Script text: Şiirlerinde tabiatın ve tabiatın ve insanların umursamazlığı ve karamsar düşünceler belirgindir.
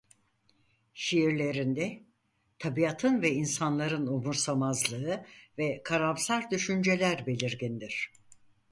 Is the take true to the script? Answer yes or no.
no